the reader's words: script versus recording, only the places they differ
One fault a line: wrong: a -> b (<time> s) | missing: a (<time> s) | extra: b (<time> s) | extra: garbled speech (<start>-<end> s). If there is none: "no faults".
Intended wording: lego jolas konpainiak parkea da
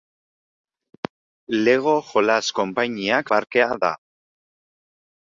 no faults